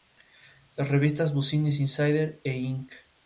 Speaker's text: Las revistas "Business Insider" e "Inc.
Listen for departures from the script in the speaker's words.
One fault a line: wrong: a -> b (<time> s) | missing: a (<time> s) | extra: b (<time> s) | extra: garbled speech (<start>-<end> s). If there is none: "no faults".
no faults